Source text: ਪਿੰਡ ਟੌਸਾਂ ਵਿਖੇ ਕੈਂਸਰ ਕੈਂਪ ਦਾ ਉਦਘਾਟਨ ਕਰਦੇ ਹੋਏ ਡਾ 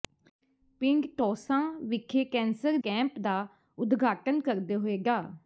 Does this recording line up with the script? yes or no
yes